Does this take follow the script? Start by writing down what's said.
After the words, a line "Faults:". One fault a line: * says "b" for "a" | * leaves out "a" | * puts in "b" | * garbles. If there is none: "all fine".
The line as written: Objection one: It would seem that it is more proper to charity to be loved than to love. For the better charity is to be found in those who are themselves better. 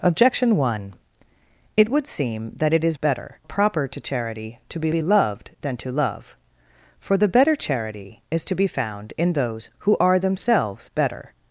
Objection one: It would seem that it is better proper to charity to be be loved than to love. For the better charity is to be found in those who are themselves better.
Faults:
* says "better" for "more"
* puts in "be"